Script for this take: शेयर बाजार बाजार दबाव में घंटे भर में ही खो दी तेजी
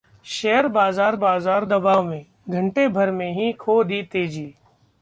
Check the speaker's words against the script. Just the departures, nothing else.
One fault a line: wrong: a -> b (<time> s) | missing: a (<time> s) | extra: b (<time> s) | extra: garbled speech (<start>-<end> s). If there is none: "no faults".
no faults